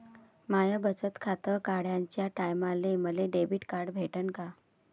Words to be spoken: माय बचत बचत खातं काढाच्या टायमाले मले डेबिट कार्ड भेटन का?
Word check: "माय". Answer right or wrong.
right